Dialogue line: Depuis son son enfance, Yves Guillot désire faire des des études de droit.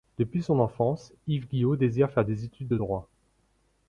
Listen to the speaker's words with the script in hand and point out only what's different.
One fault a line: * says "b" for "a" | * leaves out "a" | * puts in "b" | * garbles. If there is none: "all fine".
* leaves out "son"
* leaves out "des"